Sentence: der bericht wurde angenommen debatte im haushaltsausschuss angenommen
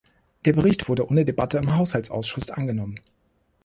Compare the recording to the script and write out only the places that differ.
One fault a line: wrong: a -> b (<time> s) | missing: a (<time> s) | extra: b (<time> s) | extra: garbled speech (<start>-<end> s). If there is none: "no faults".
wrong: angenommen -> ohne (1.1 s)